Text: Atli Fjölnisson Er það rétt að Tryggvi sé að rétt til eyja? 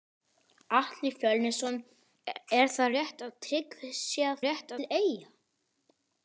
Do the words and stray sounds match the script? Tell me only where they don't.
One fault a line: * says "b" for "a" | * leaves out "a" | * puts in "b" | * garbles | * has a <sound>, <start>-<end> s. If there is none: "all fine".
all fine